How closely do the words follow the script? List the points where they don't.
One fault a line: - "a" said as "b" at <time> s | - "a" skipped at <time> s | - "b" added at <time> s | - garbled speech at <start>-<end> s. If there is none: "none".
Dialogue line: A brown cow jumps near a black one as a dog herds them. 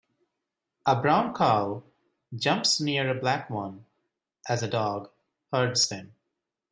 none